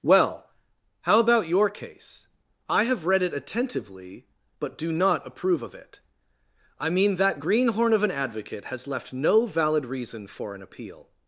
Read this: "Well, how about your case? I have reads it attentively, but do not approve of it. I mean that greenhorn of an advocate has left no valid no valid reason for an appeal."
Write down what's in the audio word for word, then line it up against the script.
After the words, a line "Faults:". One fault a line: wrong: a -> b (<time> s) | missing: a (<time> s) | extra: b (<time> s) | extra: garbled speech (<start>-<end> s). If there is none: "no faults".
"Well, how about your case? I have read it attentively, but do not approve of it. I mean that greenhorn of an advocate has left no valid reason for an appeal."
Faults:
wrong: reads -> read (3.0 s)
missing: no valid (9.8 s)